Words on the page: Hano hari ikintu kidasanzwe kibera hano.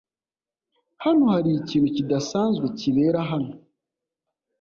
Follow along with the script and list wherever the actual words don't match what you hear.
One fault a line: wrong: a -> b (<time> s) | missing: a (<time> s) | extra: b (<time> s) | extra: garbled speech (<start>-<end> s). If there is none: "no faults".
no faults